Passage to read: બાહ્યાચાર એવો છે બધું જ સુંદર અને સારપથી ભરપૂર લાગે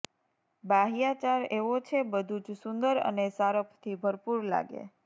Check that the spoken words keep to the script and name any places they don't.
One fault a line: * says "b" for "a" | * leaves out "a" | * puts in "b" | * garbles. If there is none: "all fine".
all fine